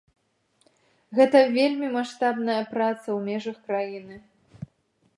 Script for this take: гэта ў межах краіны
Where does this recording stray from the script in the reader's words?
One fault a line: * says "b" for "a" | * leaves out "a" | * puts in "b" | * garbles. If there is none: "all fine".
* puts in "вельмі маштабная праца"